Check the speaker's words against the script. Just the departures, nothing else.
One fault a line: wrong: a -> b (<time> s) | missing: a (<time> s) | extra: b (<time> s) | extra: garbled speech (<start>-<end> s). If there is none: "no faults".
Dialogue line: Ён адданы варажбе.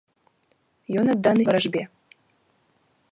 no faults